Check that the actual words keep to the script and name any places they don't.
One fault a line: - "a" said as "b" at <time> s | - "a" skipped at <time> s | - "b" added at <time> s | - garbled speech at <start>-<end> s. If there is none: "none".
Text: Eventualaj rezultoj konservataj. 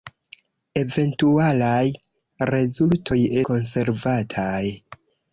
none